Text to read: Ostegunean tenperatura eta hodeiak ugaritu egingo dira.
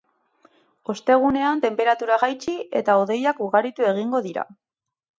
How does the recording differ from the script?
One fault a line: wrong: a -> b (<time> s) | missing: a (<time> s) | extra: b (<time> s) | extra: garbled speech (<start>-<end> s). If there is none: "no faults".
extra: jaitsi (2.2 s)